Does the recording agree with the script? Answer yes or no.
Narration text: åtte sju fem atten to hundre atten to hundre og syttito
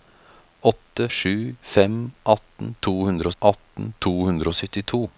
yes